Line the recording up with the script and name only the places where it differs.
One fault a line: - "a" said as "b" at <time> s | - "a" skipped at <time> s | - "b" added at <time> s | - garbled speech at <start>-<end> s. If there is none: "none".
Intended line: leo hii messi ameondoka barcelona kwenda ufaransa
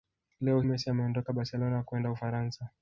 - "hii" skipped at 0.6 s